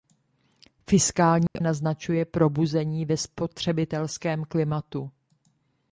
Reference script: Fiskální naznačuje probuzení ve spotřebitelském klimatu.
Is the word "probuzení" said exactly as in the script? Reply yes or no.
yes